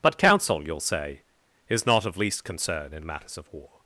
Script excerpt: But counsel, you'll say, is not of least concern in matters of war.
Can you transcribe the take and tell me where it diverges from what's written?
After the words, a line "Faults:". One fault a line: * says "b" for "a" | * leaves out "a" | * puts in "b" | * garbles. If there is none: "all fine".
But counsel, you'll say, is not of least concern in matters of war.
Faults:
all fine